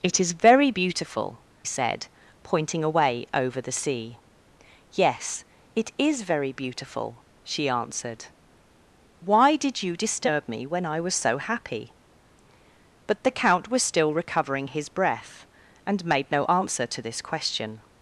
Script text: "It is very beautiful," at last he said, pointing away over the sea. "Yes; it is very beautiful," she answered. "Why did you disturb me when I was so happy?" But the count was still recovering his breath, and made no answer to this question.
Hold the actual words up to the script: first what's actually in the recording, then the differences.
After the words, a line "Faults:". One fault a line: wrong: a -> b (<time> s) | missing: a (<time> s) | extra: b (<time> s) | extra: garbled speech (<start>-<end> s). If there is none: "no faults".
"It is very beautiful," said, pointing away over the sea. "Yes; it is very beautiful," she answered. "Why did you disturb me when I was so happy?" But the count was still recovering his breath, and made no answer to this question.
Faults:
missing: at last he (1.5 s)